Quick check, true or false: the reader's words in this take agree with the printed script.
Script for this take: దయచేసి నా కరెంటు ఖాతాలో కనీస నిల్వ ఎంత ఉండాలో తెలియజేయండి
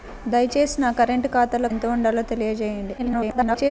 false